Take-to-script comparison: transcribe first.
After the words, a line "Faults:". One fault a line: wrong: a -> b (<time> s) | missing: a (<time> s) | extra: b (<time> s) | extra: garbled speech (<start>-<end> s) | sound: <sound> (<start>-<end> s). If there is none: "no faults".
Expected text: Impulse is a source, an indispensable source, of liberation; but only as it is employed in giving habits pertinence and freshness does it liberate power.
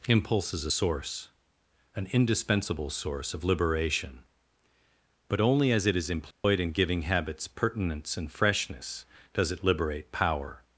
Impulse is a source, an indispensable source, of liberation; but only as it is employed in giving habits pertinence and freshness does it liberate power.
Faults:
sound: dropout (6.3-6.4 s)